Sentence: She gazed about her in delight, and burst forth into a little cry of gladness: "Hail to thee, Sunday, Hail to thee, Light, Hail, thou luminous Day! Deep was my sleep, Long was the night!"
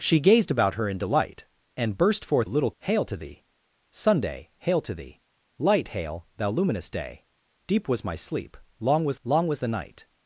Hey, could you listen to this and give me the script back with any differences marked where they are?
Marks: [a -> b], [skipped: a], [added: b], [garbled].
She gazed about her in delight, and burst forth [skipped: into] a little [skipped: cry of gladness:] "Hail to thee, Sunday, Hail to thee, Light, Hail, thou luminous Day! Deep was my sleep, Long was [added: Long was] the night!"